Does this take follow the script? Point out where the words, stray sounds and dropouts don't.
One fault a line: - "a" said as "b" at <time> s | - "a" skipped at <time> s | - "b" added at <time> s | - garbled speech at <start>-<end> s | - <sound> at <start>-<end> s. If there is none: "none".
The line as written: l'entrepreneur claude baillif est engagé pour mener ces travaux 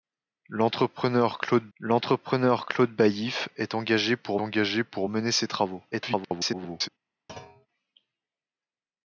- "l'entrepreneur claude" added at 1.8 s
- "engagé pour" added at 4.4 s
- garbled speech at 5.9-6.9 s
- thud at 7.3-7.7 s